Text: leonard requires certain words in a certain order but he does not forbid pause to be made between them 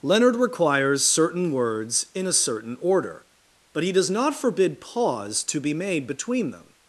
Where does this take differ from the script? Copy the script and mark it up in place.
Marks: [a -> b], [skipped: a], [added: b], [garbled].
leonard requires certain words in a certain order but he does not forbid pause to be made between them